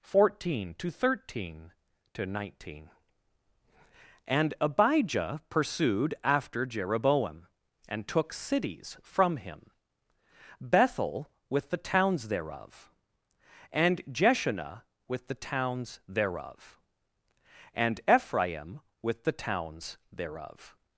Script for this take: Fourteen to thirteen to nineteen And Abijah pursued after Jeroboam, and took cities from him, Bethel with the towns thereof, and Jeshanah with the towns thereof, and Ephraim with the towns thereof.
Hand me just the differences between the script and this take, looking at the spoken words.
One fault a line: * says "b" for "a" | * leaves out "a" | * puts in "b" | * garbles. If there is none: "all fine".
all fine